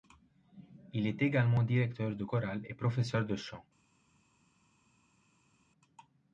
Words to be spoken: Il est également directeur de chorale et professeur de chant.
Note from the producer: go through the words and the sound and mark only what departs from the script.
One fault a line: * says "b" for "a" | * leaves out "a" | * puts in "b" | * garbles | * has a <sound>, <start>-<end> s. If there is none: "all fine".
all fine